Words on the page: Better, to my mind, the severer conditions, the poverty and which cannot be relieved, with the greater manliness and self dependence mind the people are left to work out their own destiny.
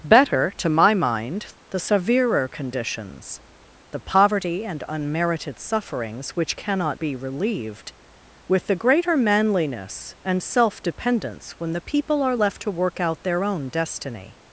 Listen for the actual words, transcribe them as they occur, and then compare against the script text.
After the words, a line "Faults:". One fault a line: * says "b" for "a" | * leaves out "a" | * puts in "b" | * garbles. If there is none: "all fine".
Better, to my mind, the severer conditions, the poverty and unmerited sufferings which cannot be relieved, with the greater manliness and self dependence when the people are left to work out their own destiny.
Faults:
* puts in "unmerited sufferings"
* says "when" for "mind"